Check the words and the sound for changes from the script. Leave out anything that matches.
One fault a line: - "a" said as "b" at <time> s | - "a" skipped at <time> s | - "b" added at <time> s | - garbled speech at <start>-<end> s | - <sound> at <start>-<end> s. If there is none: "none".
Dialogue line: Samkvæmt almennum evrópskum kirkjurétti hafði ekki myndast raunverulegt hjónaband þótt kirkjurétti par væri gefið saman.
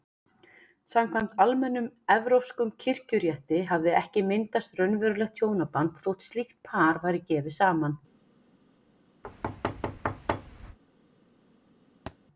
- "kirkjurétti" said as "slíkt" at 6.3 s
- thud at 9.2-10.8 s
- thud at 12.1-12.2 s